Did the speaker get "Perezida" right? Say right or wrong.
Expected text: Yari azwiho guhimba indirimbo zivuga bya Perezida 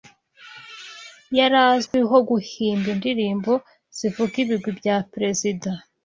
right